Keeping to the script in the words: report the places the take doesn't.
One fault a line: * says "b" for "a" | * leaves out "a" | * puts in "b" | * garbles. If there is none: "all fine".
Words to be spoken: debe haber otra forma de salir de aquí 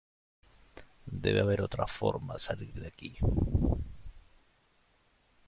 * leaves out "de"